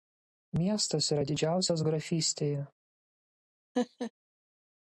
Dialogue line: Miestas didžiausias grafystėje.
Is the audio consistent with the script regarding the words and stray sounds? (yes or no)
no